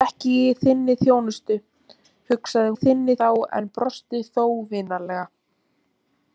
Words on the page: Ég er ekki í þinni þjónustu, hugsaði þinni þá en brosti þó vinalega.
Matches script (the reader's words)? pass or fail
pass